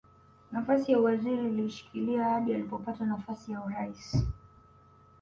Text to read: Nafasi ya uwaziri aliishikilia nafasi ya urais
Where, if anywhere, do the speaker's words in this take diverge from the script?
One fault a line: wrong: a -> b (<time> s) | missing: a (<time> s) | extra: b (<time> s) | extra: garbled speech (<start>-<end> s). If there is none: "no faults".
extra: hadi alipopata (2.2 s)